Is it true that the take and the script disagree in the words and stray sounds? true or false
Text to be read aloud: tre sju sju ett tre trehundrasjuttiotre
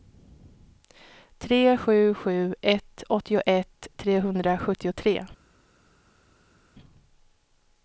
true